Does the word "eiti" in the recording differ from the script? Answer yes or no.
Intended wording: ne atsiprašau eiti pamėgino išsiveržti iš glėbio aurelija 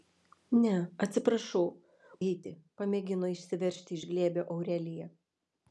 no